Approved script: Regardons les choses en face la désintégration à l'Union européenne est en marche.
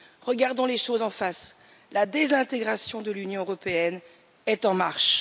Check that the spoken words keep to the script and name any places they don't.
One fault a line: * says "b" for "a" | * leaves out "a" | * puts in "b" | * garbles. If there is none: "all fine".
* says "de" for "à"